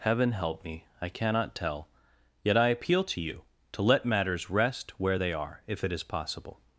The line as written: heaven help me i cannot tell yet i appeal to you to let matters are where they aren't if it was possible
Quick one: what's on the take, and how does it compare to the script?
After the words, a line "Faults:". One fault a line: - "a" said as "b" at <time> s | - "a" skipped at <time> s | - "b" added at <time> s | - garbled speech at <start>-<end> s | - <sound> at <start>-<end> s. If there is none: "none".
heaven help me i cannot tell yet i appeal to you to let matters rest where they are if it is possible
Faults:
- "are" said as "rest" at 4.5 s
- "aren't" said as "are" at 5.3 s
- "was" said as "is" at 5.9 s